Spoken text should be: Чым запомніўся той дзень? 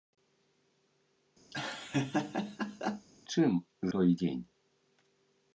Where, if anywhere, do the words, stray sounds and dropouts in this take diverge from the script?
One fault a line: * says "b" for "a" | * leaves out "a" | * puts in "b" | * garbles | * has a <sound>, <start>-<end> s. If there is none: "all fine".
* has a laugh, 1.5-3.1 s
* leaves out "запомніўся"